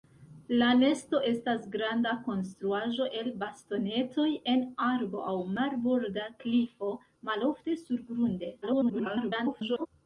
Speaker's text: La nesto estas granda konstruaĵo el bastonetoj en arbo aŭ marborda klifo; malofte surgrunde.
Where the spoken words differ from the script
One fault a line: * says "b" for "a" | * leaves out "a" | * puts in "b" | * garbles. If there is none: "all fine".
* garbles